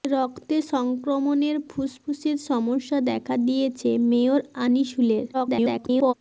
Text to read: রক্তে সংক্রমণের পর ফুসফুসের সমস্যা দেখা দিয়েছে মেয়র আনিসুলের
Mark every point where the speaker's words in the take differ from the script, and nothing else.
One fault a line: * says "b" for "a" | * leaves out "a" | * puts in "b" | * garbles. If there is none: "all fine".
* leaves out "পর"
* garbles